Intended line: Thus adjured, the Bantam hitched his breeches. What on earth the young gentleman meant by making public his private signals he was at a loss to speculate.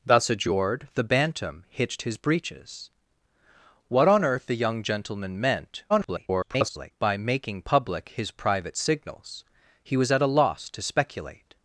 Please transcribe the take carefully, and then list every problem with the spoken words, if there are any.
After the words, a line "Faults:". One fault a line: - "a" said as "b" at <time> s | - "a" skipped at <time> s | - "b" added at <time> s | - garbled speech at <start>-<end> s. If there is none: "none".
Thus adjured, the Bantam hitched his breeches. What on earth the young gentleman meant [garbled] by making public his private signals he was at a loss to speculate.
Faults:
- garbled speech at 5.9-6.9 s